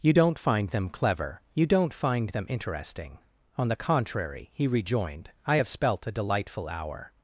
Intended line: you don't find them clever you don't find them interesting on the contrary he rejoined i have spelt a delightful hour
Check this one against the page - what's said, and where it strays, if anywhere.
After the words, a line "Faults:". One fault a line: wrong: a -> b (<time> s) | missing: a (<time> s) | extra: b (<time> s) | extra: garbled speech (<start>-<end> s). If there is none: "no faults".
you don't find them clever you don't find them interesting on the contrary he rejoined i have spelt a delightful hour
Faults:
no faults